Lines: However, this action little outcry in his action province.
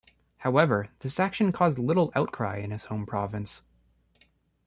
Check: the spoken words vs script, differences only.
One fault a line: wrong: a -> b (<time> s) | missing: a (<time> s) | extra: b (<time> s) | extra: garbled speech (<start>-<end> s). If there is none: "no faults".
extra: caused (1.5 s)
wrong: action -> home (2.8 s)